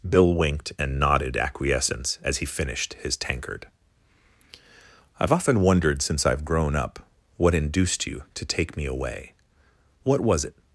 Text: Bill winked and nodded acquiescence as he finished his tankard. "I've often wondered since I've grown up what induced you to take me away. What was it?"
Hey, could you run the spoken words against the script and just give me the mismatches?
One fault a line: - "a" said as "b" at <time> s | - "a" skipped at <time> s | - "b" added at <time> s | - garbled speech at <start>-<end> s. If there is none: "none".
none